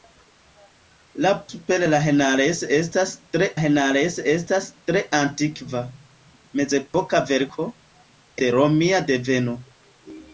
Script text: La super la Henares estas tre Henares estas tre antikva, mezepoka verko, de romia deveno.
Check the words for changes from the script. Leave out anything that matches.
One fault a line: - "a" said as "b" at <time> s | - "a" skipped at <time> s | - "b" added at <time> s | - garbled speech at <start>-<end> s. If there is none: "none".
none